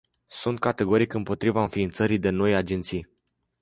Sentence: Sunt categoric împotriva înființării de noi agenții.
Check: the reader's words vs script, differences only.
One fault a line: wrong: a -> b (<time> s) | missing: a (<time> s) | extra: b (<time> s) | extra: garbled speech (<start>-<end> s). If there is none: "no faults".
no faults